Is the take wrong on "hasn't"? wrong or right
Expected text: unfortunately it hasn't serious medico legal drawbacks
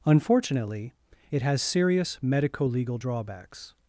wrong